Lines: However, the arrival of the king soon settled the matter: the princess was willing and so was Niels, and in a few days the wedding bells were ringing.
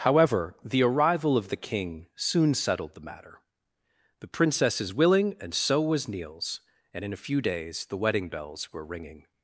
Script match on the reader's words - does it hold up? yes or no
no